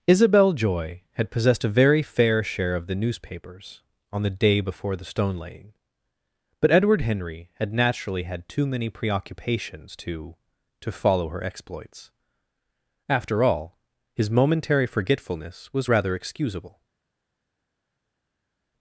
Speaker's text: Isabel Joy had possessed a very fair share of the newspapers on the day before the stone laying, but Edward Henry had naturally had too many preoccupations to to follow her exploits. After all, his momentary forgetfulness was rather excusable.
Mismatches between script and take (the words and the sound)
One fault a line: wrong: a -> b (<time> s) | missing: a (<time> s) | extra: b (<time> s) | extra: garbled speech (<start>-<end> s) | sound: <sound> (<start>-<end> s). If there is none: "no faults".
no faults